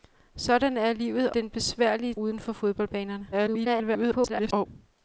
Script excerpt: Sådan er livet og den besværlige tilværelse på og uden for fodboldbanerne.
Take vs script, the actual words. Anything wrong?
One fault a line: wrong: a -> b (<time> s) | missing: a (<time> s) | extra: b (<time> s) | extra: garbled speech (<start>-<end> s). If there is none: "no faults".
missing: og (1.3 s)
missing: tilværelse på og (2.1 s)
extra: garbled speech (3.3-4.7 s)